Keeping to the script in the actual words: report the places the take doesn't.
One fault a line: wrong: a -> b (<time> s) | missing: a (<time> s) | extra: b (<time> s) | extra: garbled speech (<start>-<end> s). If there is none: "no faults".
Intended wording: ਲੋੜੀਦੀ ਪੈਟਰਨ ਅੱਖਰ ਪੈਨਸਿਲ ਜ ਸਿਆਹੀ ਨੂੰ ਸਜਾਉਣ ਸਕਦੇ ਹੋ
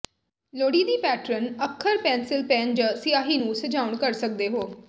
extra: ਪੈਨ (2.5 s)
extra: ਕਰ (4.0 s)